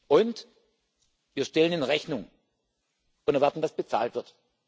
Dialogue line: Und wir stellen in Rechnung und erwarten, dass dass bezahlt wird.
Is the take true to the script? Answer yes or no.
no